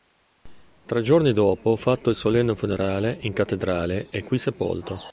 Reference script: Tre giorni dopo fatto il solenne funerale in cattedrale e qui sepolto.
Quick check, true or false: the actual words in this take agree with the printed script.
true